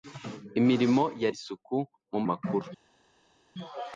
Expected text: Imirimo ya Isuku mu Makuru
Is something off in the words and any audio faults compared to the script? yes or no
no